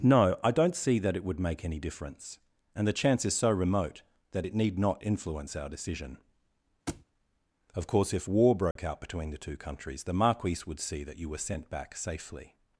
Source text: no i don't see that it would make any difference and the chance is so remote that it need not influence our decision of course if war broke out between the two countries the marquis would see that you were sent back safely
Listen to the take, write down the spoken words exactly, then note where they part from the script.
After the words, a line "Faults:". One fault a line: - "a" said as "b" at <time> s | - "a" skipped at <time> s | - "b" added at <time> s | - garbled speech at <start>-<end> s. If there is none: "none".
no i don't see that it would make any difference and the chance is so remote that it need not influence our decision of course if war broke out between the two countries the marquis would see that you were sent back safely
Faults:
none